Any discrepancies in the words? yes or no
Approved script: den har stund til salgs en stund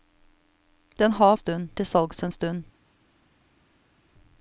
no